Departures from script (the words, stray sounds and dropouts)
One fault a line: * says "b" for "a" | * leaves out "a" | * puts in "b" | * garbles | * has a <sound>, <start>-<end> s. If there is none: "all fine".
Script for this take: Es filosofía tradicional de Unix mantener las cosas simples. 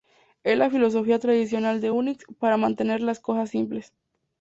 * puts in "la"
* puts in "para"